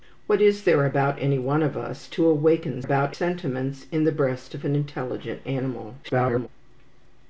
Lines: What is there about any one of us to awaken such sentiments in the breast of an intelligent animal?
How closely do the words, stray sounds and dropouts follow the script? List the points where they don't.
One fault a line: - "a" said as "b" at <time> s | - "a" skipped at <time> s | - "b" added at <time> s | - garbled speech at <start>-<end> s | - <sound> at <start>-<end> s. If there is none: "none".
- "such" said as "about" at 2.8 s
- garbled speech at 6.0-6.5 s